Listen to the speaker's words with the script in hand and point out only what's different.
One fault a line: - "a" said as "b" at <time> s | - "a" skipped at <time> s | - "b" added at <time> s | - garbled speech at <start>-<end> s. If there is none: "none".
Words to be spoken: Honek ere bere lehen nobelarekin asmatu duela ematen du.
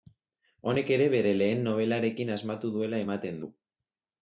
none